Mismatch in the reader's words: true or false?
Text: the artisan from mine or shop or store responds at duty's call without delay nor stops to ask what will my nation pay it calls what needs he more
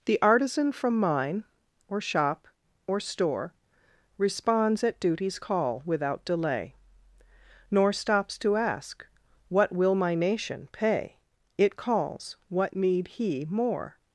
true